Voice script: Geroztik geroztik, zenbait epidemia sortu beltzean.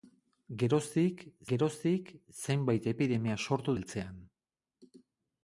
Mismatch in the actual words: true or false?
false